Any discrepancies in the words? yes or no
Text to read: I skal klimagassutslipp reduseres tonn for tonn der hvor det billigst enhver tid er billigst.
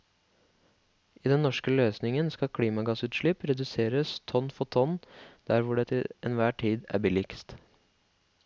yes